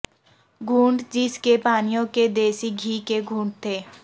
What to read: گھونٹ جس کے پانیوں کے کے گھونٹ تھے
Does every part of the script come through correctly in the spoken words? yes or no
no